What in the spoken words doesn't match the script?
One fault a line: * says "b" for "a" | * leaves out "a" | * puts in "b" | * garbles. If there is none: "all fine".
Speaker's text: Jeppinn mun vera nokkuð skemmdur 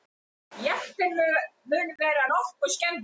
all fine